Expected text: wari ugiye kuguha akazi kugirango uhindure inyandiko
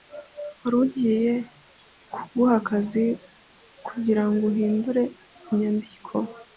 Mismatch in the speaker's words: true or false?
false